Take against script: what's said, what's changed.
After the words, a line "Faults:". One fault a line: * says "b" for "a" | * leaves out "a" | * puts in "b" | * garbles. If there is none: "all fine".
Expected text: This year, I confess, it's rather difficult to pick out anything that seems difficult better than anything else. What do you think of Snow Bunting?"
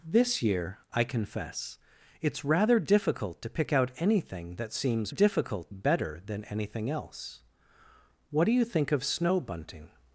This year, I confess, it's rather difficult to pick out anything that seems difficult better than anything else. What do you think of Snow Bunting?"
Faults:
all fine